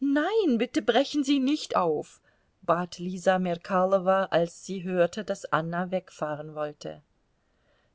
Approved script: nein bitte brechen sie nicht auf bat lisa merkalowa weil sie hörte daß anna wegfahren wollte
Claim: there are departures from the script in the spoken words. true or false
true